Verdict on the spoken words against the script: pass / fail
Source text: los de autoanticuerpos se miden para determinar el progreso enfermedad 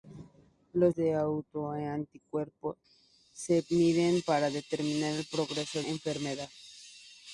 pass